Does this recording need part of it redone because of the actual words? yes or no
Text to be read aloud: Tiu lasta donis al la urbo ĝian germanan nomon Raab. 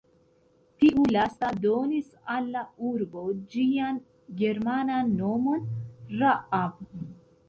no